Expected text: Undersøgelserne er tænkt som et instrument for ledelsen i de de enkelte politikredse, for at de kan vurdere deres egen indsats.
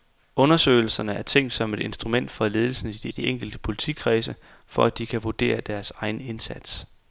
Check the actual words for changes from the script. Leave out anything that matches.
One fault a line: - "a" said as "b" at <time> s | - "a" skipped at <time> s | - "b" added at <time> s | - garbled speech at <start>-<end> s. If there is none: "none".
none